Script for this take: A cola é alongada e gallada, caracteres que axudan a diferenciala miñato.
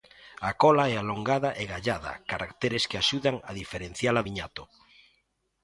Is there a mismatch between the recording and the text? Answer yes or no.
no